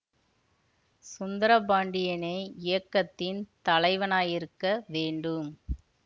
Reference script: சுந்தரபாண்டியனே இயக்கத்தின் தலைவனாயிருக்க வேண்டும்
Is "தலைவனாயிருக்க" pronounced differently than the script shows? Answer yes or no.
no